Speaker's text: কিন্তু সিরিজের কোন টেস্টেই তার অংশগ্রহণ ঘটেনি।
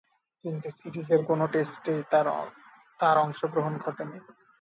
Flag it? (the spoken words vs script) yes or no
no